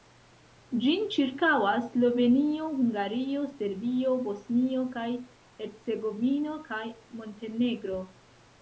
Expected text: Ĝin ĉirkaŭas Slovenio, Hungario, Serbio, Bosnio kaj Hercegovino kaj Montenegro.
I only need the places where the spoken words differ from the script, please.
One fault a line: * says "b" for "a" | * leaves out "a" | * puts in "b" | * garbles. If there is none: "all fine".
all fine